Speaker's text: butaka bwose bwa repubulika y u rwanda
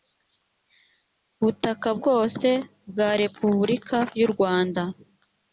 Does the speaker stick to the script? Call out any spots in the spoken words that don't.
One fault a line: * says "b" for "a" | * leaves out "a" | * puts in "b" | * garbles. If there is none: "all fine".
all fine